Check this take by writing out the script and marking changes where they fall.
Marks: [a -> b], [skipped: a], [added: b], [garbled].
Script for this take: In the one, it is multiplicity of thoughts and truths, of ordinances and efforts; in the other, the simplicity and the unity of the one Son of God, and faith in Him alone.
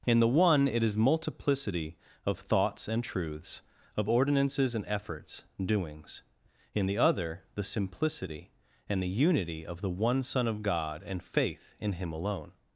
In the one, it is multiplicity of thoughts and truths, of ordinances and efforts; [added: doings] in the other, the simplicity and the unity of the one Son of God, and faith in Him alone.